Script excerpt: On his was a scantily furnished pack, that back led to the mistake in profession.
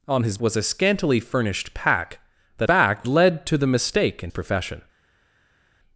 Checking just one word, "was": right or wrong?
right